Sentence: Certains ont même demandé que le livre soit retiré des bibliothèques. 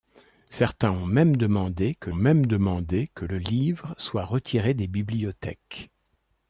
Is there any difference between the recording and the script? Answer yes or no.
yes